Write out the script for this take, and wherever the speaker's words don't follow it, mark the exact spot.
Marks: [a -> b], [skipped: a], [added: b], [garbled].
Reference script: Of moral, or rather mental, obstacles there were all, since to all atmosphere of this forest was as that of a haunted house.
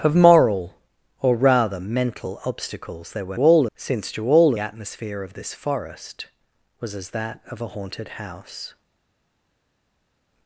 Of moral, or rather mental, obstacles there were all, since to all atmosphere of this forest was as that of a haunted house.